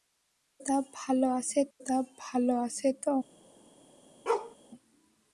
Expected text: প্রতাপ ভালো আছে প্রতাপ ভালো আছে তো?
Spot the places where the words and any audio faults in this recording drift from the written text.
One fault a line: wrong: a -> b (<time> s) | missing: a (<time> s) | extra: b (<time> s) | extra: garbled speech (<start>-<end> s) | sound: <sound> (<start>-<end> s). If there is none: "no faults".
sound: bark (4.3-4.6 s)